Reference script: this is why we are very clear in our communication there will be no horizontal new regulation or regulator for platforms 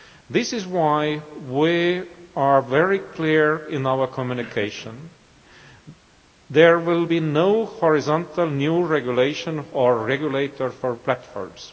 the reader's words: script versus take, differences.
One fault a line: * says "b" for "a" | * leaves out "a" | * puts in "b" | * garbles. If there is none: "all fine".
all fine